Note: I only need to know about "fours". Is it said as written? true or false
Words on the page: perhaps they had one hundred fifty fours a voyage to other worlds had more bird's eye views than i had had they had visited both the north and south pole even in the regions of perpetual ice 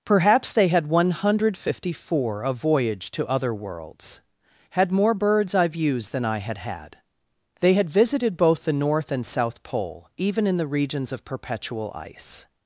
false